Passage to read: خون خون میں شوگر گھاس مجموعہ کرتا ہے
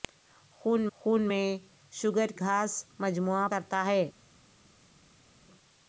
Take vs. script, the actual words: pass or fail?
pass